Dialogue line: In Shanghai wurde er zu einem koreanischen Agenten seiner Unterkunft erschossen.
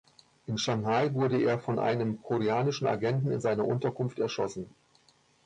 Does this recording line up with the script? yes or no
no